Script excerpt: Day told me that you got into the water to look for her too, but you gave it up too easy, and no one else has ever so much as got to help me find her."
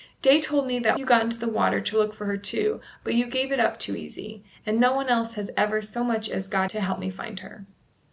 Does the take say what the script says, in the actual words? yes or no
yes